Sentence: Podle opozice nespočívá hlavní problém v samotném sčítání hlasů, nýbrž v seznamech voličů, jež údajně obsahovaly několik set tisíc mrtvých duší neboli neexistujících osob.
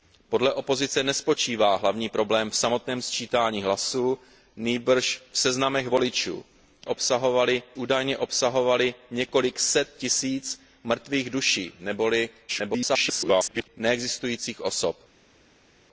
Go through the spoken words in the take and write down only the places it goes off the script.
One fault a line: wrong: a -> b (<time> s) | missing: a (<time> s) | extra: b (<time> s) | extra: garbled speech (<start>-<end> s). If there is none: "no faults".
wrong: jež -> obsahovaly (6.9 s)
extra: garbled speech (12.5-13.7 s)